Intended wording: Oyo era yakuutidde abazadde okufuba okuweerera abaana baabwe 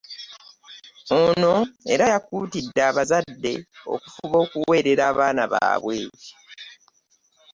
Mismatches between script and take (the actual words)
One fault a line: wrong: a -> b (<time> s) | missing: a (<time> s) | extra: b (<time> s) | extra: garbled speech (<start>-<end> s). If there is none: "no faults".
wrong: Oyo -> Ono (1.2 s)